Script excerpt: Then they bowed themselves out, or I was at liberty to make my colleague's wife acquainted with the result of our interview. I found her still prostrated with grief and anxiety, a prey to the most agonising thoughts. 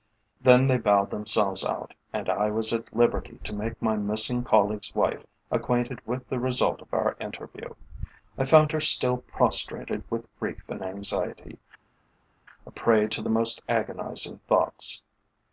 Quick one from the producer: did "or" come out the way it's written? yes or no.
no